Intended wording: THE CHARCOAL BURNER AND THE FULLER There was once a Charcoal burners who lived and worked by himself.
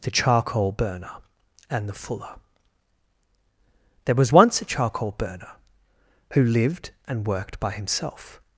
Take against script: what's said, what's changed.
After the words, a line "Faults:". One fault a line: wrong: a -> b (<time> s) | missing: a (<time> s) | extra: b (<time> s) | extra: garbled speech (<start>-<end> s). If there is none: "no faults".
THE CHARCOAL BURNER AND THE FULLER There was once a Charcoal burner who lived and worked by himself.
Faults:
wrong: burners -> burner (5.2 s)